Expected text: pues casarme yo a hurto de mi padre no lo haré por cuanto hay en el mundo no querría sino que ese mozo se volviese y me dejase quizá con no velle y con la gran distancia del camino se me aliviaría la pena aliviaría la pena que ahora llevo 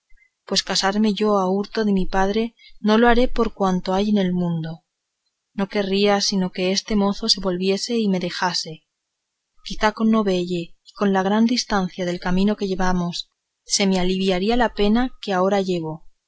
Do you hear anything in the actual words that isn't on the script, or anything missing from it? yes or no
yes